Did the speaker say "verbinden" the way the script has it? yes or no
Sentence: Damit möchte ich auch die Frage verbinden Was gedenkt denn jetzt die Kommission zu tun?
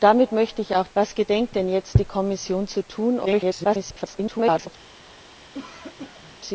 no